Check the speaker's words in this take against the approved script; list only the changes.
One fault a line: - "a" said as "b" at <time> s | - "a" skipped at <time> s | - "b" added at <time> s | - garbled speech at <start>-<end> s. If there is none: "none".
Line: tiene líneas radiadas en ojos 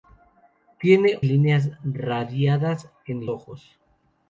none